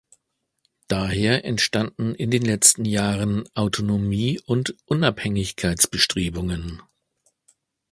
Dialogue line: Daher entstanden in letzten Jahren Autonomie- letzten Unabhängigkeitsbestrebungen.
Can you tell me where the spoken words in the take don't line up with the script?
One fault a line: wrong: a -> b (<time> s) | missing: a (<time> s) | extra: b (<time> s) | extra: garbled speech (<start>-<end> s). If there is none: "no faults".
extra: den (2.3 s)
wrong: letzten -> und (4.4 s)